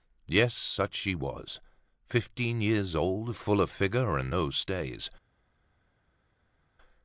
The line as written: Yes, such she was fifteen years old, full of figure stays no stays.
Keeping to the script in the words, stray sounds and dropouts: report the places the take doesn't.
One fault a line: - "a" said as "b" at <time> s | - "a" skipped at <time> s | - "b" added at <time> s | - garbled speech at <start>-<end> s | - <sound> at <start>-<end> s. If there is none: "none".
- "stays" said as "and" at 4.2 s